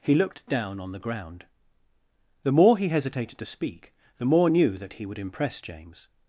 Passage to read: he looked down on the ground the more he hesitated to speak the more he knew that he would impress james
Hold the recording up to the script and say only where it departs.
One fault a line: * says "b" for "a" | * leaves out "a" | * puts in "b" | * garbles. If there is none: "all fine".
* leaves out "he"